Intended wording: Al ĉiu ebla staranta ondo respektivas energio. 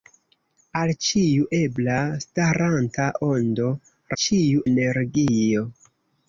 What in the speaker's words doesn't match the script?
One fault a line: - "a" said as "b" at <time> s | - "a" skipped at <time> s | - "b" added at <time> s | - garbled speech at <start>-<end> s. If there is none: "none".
- "respektivas" said as "ĉiu" at 4.2 s